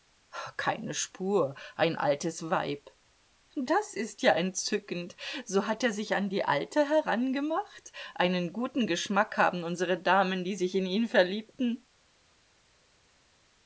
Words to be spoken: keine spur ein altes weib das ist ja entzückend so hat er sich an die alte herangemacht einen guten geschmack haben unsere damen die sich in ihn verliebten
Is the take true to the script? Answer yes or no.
yes